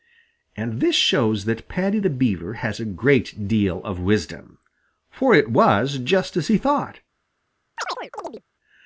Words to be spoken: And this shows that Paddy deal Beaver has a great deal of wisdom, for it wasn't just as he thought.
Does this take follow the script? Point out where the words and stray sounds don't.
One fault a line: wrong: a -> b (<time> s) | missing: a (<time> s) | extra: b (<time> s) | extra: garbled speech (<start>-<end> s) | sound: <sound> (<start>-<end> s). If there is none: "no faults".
wrong: deal -> the (2.0 s)
wrong: wasn't -> was (5.5 s)
sound: chirp (7.8-8.4 s)